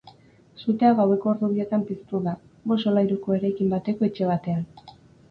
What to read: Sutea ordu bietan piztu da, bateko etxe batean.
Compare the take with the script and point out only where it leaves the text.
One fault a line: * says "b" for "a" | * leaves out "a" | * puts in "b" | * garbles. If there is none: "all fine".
* puts in "gaueko"
* puts in "bost solairuko eraikin"